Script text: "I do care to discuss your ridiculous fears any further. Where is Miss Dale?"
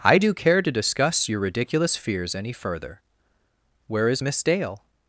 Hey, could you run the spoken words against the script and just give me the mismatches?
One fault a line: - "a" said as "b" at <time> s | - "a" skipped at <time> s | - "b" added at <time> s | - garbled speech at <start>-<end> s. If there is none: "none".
none